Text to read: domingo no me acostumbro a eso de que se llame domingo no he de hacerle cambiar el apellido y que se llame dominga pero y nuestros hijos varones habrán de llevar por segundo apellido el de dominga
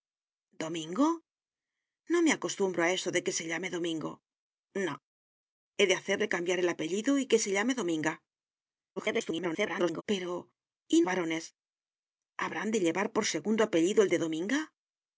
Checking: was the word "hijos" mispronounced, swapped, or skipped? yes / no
yes